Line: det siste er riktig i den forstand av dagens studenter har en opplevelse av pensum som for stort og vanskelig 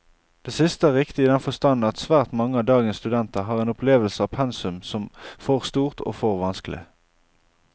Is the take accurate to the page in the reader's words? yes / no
no